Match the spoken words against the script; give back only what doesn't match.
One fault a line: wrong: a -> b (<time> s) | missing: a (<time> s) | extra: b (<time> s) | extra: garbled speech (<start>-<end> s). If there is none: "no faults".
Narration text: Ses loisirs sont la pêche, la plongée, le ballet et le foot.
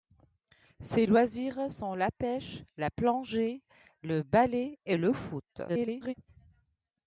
extra: garbled speech (5.7-6.1 s)